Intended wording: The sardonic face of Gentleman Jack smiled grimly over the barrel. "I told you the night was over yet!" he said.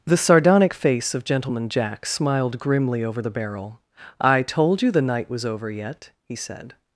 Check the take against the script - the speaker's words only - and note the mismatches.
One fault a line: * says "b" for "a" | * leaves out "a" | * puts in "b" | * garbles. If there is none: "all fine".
all fine